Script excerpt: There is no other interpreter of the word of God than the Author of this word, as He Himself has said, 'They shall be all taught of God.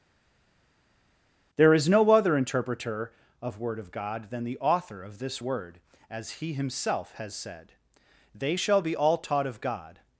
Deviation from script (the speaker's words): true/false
true